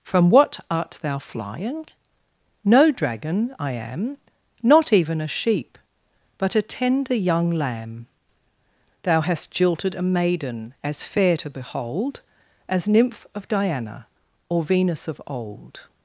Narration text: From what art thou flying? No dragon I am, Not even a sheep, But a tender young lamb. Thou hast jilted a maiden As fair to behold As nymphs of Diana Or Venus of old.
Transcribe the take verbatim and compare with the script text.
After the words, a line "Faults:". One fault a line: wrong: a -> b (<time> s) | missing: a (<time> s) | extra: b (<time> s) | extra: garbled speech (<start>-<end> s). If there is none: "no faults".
From what art thou flying? No dragon I am, Not even a sheep, But a tender young lamb. Thou hast jilted a maiden As fair to behold As nymph of Diana Or Venus of old.
Faults:
wrong: nymphs -> nymph (12.9 s)